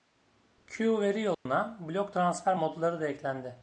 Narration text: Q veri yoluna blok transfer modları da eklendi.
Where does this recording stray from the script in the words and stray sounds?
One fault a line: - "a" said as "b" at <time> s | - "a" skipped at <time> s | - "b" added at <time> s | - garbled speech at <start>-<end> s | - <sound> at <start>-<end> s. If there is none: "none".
- dropout at 1.3-1.5 s